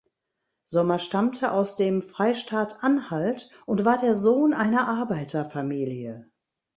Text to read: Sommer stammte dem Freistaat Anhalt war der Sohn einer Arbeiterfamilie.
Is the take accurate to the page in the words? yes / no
no